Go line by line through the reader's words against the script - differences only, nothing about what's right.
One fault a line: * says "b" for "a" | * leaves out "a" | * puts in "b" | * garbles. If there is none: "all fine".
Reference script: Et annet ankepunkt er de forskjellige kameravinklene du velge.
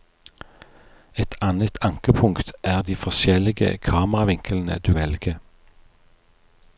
all fine